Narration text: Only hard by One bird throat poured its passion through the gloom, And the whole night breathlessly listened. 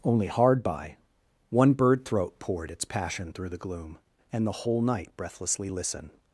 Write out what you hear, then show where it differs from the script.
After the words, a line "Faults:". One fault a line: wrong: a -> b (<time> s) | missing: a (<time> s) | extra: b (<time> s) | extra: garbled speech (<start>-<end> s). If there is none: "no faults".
Only hard by One bird throat poured its passion through the gloom, And the whole night breathlessly listened.
Faults:
no faults